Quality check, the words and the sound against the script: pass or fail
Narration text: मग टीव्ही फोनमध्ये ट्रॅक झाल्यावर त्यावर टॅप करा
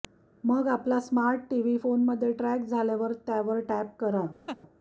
fail